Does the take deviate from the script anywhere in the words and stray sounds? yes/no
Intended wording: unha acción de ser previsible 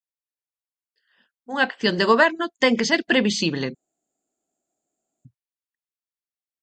yes